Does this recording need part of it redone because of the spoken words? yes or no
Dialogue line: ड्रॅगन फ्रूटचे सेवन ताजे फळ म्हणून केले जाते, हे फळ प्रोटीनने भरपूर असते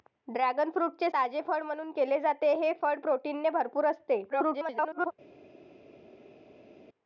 yes